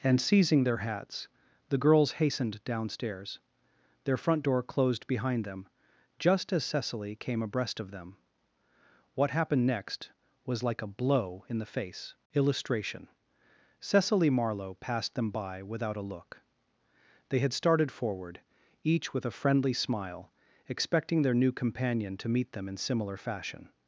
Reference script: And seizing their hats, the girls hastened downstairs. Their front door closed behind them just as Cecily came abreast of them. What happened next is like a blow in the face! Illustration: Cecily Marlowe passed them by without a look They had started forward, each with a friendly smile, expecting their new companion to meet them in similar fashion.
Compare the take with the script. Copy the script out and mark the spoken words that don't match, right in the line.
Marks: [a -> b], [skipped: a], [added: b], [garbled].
And seizing their hats, the girls hastened downstairs. Their front door closed behind them just as Cecily came abreast of them. What happened next [is -> was] like a blow in the face! Illustration: Cecily Marlowe passed them by without a look They had started forward, each with a friendly smile, expecting their new companion to meet them in similar fashion.